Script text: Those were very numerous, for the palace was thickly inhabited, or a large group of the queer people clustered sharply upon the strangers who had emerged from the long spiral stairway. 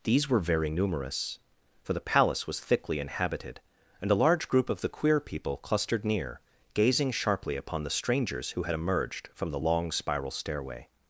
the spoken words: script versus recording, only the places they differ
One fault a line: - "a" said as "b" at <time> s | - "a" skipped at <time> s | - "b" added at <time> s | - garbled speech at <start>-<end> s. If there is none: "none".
- "Those" said as "These" at 0.0 s
- "or" said as "and" at 4.0 s
- "near gazing" added at 6.1 s